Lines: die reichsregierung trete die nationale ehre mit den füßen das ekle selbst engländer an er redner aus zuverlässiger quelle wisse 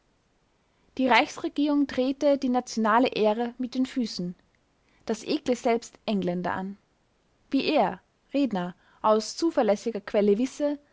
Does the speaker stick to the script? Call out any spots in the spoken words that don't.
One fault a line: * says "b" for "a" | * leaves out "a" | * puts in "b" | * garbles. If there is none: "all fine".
* puts in "wie"